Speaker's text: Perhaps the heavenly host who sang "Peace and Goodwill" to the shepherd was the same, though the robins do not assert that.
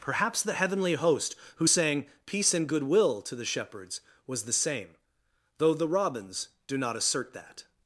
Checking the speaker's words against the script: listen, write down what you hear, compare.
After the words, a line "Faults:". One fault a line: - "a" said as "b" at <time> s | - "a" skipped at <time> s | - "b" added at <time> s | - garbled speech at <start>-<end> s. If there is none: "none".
Perhaps the heavenly host who sang "Peace and Goodwill" to the shepherds was the same, though the robins do not assert that.
Faults:
- "shepherd" said as "shepherds" at 3.4 s